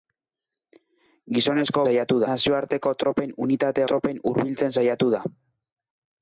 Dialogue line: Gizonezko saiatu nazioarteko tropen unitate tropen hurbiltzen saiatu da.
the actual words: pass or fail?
pass